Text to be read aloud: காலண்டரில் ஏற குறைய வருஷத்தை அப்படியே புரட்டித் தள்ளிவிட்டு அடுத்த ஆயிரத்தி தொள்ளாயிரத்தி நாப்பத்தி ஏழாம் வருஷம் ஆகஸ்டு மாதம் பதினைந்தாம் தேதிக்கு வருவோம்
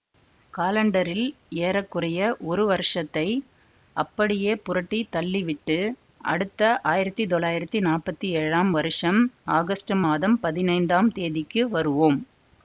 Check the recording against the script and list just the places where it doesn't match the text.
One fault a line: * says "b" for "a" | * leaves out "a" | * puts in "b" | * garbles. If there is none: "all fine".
* puts in "ஒரு"